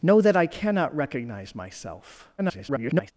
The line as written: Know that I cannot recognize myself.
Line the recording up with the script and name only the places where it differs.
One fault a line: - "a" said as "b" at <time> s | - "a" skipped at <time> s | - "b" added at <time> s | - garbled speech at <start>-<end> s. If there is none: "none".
- garbled speech at 2.4-3.1 s